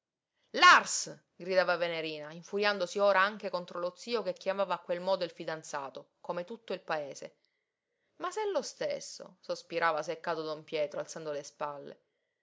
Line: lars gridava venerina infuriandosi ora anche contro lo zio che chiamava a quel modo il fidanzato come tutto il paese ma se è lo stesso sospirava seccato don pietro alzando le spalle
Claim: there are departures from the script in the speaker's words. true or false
false